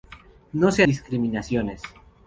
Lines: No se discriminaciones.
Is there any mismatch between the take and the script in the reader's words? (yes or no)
no